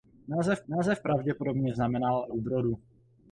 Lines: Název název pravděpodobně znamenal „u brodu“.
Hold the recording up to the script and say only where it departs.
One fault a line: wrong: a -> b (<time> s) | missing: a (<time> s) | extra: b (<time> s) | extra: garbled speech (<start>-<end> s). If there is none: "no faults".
no faults